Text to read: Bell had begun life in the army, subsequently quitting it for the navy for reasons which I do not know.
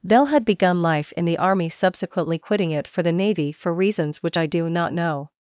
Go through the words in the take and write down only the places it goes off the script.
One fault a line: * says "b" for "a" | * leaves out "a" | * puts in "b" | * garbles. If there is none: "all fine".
all fine